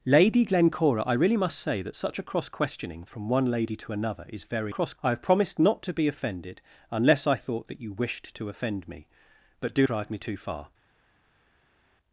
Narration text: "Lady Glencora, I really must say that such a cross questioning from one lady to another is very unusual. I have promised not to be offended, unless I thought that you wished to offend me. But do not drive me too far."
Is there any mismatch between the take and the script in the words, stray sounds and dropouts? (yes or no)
yes